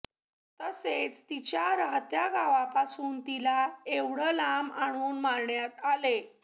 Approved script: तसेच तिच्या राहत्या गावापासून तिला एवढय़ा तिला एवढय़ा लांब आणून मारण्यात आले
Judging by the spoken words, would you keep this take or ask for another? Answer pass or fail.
fail